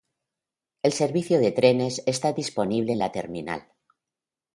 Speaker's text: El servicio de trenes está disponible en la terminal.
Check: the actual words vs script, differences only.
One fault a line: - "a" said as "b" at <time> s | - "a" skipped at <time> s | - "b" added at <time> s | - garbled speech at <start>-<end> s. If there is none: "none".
none